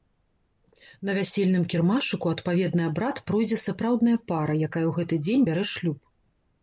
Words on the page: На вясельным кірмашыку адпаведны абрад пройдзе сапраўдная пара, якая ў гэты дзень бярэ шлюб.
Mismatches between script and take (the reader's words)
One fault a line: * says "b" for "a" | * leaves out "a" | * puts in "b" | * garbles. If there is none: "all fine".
all fine